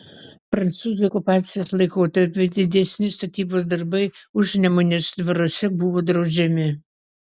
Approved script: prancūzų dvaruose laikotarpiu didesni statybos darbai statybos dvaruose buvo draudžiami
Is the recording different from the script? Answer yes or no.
yes